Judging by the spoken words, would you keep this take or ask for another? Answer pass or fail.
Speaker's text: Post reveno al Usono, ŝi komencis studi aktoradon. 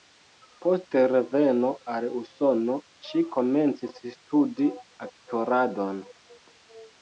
pass